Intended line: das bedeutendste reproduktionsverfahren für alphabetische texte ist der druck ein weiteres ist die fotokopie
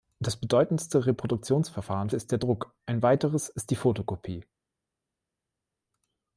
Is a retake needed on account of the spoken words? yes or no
yes